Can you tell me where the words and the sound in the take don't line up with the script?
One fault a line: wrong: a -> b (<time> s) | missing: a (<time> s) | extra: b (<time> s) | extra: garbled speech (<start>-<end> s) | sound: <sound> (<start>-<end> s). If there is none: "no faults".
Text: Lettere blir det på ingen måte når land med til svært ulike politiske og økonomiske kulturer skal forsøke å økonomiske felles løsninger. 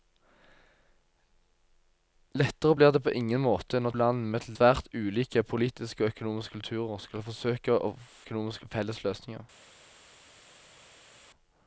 no faults